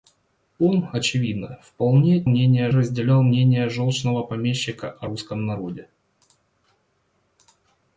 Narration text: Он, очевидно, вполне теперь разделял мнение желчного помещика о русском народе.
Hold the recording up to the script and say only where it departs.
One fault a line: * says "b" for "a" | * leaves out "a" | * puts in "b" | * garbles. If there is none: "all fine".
* says "мнение" for "теперь"